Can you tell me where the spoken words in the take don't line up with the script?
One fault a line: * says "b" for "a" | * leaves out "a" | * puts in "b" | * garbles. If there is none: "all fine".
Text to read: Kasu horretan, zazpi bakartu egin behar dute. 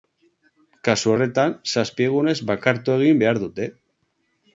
* puts in "egunez"